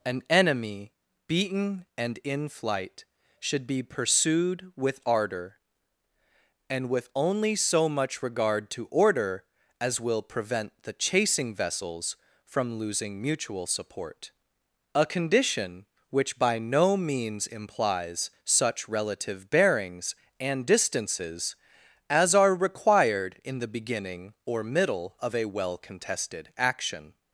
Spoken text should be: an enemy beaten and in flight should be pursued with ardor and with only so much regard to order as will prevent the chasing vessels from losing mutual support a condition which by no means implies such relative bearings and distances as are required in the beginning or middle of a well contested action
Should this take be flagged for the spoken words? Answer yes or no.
no